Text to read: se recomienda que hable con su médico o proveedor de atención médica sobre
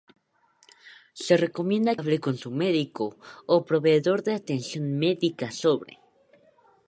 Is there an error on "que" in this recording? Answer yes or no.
yes